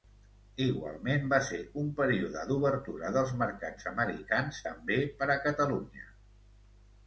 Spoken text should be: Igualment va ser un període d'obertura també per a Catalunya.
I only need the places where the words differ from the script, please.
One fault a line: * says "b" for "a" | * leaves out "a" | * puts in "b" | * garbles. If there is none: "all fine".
* puts in "dels mercats americans"